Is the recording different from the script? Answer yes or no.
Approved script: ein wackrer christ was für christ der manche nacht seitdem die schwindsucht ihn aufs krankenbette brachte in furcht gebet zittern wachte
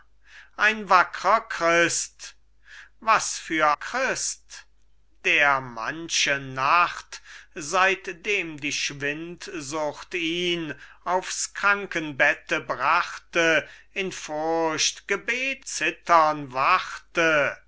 no